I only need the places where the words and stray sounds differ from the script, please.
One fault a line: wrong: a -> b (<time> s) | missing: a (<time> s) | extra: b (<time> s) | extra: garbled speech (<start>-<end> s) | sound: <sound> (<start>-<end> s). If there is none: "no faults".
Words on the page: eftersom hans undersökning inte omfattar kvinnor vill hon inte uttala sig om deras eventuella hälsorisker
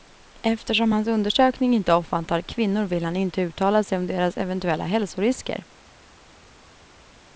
wrong: hon -> han (3.0 s)